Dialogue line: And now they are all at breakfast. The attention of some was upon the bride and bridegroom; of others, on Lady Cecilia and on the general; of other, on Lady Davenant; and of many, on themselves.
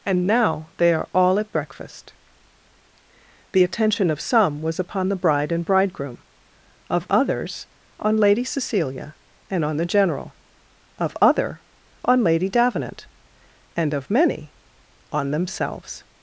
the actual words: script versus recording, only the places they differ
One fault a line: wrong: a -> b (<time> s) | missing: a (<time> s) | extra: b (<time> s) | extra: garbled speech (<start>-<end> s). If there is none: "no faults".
no faults